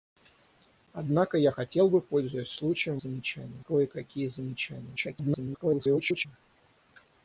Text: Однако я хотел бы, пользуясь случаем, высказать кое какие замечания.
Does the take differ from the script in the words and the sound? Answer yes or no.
yes